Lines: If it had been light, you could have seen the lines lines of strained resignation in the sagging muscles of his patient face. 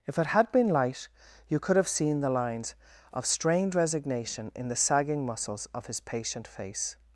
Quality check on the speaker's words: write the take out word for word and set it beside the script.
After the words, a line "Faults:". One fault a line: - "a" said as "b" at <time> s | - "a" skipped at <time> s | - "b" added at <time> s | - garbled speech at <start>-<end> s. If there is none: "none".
If it had been light, you could have seen the lines of strained resignation in the sagging muscles of his patient face.
Faults:
- "lines" skipped at 2.7 s